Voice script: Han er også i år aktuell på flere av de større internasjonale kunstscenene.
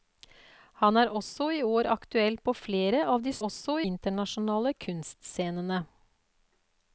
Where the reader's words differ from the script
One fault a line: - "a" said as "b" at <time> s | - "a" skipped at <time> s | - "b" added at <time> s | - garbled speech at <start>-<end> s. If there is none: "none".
- "større" said as "også" at 3.5 s